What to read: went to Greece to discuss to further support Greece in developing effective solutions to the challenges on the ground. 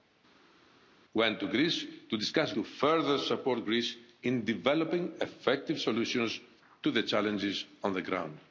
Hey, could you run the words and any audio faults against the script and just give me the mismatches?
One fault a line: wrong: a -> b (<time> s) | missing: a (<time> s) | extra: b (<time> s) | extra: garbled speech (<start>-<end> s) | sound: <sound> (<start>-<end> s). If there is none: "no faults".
no faults